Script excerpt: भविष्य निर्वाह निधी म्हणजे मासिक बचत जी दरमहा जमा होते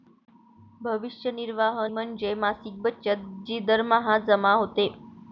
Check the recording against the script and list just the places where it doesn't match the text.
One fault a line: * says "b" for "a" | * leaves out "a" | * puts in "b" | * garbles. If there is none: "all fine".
* leaves out "निधी"